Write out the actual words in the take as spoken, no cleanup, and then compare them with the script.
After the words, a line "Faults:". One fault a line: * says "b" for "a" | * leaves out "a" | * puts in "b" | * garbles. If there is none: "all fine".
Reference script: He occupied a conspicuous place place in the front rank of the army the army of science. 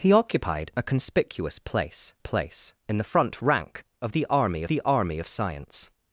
He occupied a conspicuous place place in the front rank of the army the army of science.
Faults:
all fine